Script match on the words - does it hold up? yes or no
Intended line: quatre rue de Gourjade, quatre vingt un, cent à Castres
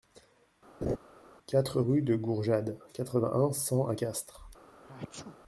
yes